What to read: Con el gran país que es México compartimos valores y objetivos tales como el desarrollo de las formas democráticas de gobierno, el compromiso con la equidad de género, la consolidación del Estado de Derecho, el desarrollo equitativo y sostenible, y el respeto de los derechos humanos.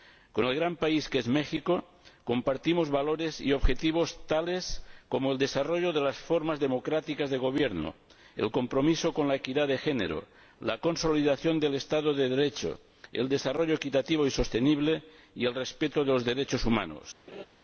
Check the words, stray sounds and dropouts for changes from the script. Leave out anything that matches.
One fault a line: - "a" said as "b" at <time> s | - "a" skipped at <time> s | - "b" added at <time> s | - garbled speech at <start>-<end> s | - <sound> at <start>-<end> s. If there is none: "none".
- laugh at 17.3-17.5 s